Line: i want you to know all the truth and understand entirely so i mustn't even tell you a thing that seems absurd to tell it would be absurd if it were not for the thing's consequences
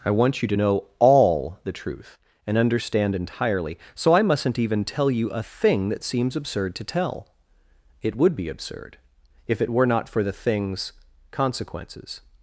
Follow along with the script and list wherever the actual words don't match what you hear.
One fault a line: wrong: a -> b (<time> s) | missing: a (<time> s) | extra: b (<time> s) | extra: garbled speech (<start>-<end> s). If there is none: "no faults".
no faults